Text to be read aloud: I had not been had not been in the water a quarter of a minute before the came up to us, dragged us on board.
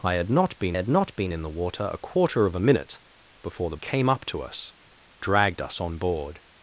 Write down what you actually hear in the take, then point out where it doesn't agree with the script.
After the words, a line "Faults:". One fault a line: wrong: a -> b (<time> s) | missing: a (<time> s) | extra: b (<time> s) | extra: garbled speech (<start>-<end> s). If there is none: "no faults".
I had not been had not been in the water a quarter of a minute before the came up to us, dragged us on board.
Faults:
no faults